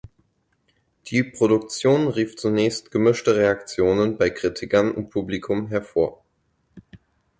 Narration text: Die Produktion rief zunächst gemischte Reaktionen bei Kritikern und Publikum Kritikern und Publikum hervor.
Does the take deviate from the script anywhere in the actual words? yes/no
yes